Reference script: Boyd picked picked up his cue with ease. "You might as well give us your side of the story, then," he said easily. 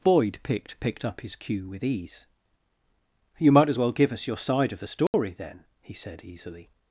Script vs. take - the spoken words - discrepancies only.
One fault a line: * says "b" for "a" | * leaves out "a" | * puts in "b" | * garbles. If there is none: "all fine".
all fine